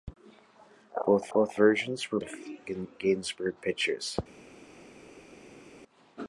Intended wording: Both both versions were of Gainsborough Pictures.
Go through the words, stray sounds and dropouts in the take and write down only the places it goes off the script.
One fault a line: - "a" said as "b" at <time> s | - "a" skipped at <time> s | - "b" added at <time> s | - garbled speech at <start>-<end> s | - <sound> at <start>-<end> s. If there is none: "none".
none